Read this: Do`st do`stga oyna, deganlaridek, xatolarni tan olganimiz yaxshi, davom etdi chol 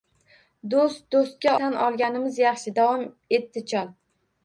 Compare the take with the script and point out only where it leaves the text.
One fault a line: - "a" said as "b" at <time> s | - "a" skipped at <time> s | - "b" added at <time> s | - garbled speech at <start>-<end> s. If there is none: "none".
- "oyna deganlaridek xatolarni" skipped at 1.5 s